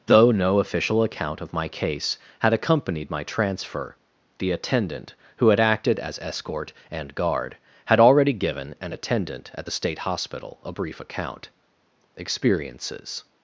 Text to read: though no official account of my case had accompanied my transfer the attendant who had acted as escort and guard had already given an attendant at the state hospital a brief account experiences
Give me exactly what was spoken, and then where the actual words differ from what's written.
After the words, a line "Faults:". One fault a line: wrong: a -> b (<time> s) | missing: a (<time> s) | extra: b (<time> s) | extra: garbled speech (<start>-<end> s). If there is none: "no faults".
though no official account of my case had accompanied my transfer the attendant who had acted as escort and guard had already given an attendant at the state hospital a brief account experiences
Faults:
no faults